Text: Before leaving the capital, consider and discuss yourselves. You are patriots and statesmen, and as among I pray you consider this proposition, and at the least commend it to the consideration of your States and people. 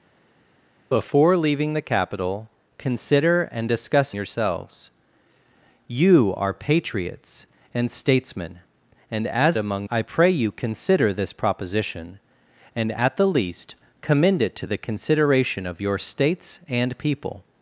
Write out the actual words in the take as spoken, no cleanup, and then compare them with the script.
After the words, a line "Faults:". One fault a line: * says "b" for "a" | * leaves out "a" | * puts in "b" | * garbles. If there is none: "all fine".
Before leaving the capital, consider and discuss yourselves. You are patriots and statesmen, and as among I pray you consider this proposition, and at the least commend it to the consideration of your States and people.
Faults:
all fine